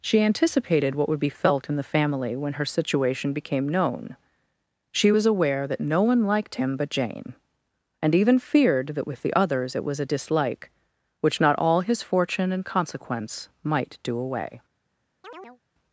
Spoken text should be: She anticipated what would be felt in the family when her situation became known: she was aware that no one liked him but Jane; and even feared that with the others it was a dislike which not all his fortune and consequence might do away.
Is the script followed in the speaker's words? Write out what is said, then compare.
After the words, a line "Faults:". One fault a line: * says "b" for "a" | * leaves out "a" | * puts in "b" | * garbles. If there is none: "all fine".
She anticipated what would be felt in the family when her situation became known: she was aware that no one liked him but Jane; and even feared that with the others it was a dislike which not all his fortune and consequence might do away.
Faults:
all fine